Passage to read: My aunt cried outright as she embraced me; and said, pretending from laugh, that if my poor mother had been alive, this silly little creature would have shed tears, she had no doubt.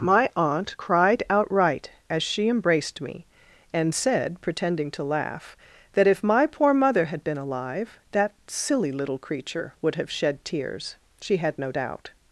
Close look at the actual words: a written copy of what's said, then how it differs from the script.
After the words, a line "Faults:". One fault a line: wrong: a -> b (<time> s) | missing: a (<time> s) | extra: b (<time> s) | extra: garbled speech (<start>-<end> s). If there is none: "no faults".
My aunt cried outright as she embraced me; and said, pretending to laugh, that if my poor mother had been alive, that silly little creature would have shed tears, she had no doubt.
Faults:
wrong: from -> to (4.9 s)
wrong: this -> that (8.1 s)